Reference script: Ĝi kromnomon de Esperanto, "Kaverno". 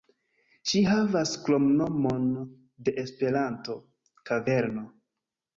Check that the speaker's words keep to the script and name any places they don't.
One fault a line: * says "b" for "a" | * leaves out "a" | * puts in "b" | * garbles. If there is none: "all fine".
* puts in "havas"